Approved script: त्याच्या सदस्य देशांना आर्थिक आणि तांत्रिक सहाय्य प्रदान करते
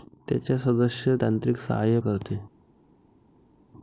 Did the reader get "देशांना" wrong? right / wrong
wrong